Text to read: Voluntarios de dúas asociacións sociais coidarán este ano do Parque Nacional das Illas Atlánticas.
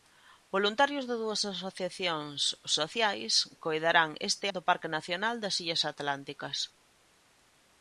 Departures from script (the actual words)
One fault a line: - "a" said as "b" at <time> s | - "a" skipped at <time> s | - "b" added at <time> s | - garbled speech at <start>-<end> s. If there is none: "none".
- "ano" skipped at 4.5 s